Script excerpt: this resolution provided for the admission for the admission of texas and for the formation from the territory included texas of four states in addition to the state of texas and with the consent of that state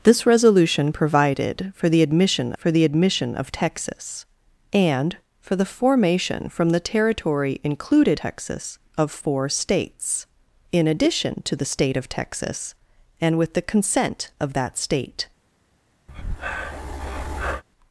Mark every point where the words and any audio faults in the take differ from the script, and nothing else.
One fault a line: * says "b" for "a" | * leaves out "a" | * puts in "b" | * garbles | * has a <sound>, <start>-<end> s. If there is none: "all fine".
* has a breath, 16.1-17.6 s